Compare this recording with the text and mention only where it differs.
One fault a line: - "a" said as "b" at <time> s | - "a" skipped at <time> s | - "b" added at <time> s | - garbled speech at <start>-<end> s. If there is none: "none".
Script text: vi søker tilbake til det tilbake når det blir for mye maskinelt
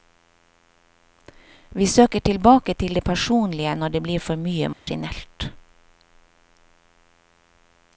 - "tilbake" said as "personlige" at 3.0 s